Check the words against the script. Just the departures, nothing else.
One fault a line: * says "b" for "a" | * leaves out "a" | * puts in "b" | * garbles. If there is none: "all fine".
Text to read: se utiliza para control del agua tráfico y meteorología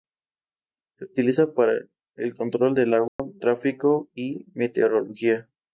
* puts in "el"